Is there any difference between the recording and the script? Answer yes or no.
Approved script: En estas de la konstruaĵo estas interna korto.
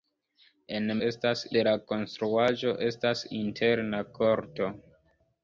no